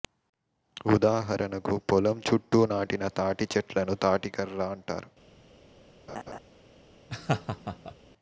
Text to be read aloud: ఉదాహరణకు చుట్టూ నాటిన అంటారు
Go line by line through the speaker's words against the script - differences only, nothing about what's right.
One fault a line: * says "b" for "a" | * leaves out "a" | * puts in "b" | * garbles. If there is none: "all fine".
* puts in "పొలం"
* puts in "తాటి చెట్లను తాటికర్ర"